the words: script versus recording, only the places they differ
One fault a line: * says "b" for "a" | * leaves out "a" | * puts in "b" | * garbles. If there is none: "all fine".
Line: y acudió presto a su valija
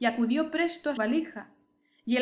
* leaves out "su"